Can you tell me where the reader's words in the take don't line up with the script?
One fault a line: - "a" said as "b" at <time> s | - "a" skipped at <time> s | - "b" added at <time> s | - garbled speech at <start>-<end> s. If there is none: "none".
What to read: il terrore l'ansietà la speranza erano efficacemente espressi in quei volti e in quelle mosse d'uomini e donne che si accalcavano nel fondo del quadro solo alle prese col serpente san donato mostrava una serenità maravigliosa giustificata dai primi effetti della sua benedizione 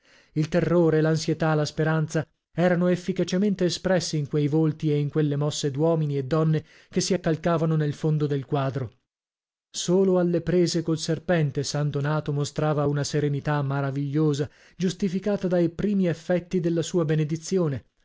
none